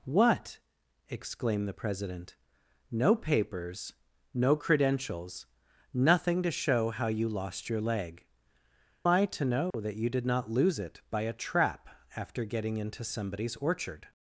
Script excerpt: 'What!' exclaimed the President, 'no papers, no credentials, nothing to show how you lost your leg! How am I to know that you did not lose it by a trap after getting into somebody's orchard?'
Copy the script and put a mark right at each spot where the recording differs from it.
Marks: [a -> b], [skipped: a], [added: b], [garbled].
'What!' exclaimed the President, 'no papers, no credentials, nothing to show how you lost your leg! [skipped: How am] I to know that you did not lose it by a trap after getting into somebody's orchard?'